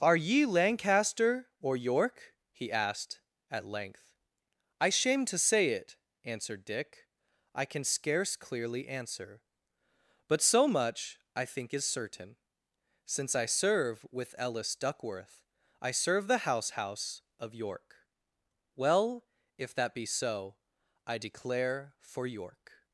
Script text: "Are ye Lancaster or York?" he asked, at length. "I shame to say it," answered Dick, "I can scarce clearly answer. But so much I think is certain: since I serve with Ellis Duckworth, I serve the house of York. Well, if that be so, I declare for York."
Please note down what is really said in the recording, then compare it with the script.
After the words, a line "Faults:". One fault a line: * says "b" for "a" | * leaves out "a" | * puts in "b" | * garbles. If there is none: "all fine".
"Are ye Lancaster or York?" he asked, at length. "I shame to say it," answered Dick, "I can scarce clearly answer. But so much I think is certain: since I serve with Ellis Duckworth, I serve the house house of York. Well, if that be so, I declare for York."
Faults:
* puts in "house"